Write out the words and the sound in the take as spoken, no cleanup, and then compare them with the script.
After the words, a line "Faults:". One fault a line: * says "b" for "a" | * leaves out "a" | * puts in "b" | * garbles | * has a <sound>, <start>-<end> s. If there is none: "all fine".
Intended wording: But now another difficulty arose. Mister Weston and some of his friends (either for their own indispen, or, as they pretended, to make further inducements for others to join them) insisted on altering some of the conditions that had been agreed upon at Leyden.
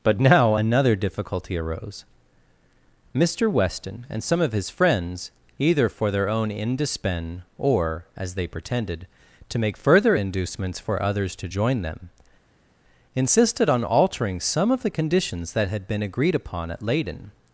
But now another difficulty arose. Mister Weston and some of his friends (either for their own indispen, or, as they pretended, to make further inducements for others to join them) insisted on altering some of the conditions that had been agreed upon at Leyden.
Faults:
all fine